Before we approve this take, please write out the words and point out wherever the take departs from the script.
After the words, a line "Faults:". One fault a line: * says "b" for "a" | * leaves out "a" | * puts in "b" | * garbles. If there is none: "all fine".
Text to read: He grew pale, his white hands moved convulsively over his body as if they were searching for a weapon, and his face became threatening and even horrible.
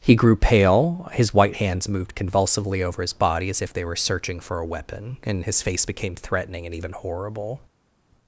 He grew pale, his white hands moved convulsively over his body as if they were searching for a weapon, and his face became threatening and even horrible.
Faults:
all fine